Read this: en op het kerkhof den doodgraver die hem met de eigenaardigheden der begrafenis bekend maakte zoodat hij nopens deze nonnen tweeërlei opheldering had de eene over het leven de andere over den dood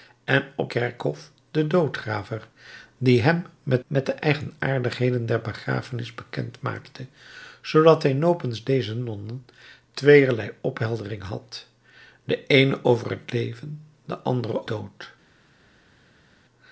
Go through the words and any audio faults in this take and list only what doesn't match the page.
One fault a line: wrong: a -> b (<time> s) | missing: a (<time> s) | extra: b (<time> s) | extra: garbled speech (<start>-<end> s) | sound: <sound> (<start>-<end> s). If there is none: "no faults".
missing: het (0.7 s)
extra: met (3.9 s)
missing: over den (14.7 s)